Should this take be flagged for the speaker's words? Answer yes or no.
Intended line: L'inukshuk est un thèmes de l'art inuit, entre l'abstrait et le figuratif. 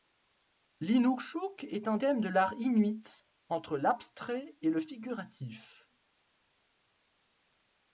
no